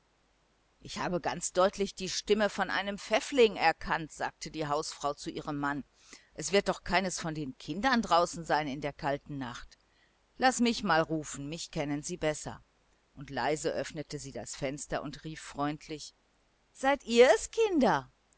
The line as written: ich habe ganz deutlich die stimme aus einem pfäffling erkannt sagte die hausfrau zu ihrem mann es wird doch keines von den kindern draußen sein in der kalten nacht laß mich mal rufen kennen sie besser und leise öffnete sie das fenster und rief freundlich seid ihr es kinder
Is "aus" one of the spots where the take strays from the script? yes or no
yes